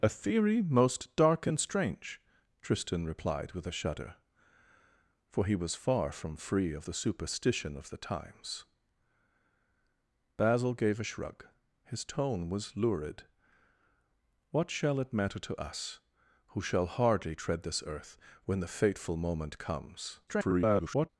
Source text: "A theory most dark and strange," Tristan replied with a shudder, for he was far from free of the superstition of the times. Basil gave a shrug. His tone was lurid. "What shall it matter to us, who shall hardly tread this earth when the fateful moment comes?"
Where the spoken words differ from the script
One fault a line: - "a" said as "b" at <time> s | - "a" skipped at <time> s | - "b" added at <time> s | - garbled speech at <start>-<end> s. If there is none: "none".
- garbled speech at 20.3-21.1 s